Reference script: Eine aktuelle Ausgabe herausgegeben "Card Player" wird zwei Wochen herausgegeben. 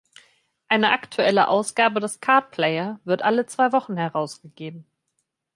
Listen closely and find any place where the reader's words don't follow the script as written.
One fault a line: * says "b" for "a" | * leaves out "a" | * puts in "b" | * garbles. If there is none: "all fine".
* says "des" for "herausgegeben"
* puts in "alle"